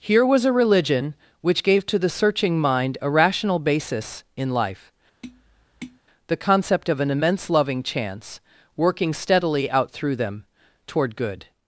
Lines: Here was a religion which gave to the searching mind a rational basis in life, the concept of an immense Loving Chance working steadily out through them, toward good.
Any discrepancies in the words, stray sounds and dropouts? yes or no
yes